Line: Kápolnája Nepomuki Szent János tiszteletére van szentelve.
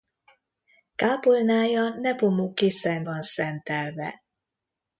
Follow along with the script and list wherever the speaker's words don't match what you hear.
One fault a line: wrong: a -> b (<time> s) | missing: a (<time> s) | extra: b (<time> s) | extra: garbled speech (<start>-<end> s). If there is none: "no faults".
missing: János tiszteletére (3.1 s)